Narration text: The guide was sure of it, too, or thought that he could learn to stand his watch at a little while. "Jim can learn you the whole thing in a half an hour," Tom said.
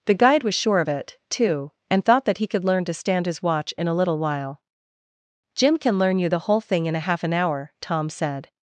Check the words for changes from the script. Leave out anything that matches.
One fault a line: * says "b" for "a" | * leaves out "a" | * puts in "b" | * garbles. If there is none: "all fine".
* says "and" for "or"
* says "in" for "at"